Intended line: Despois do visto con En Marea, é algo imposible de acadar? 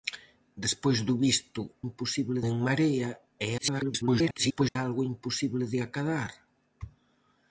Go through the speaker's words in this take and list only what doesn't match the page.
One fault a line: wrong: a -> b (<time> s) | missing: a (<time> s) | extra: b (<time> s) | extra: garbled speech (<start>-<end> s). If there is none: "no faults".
wrong: con -> imposible (1.9 s)
extra: garbled speech (3.6-4.8 s)